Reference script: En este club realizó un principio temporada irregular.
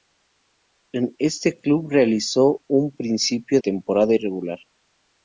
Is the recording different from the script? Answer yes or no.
no